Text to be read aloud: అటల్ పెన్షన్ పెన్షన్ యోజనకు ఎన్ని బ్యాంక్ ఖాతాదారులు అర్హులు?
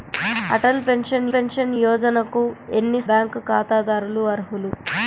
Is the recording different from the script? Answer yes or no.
no